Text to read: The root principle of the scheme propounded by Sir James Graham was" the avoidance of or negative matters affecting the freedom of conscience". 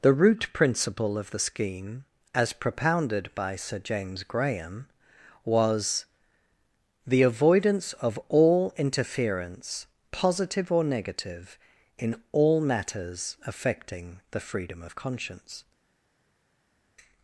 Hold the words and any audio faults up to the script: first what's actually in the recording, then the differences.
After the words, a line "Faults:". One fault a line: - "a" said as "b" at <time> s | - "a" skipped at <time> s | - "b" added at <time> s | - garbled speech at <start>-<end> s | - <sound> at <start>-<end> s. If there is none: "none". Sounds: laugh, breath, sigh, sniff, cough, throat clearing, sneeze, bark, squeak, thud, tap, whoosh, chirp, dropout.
The root principle of the scheme as propounded by Sir James Graham was" the avoidance of all interference positive or negative in all matters affecting the freedom of conscience".
Faults:
- "as" added at 2.3 s
- "all interference positive" added at 8.3 s
- "in all" added at 12.0 s